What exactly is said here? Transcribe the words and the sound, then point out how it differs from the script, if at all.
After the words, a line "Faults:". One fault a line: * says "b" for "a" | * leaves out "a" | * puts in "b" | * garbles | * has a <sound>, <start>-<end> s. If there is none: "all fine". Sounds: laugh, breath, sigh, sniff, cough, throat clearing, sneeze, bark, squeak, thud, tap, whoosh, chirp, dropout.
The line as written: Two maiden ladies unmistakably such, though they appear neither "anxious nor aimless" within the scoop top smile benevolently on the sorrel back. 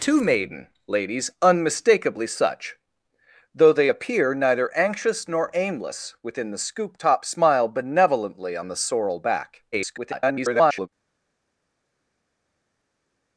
Two maiden ladies unmistakably such, though they appear neither "anxious nor aimless" within the scoop top smile benevolently on the sorrel back. [garbled]
Faults:
* garbles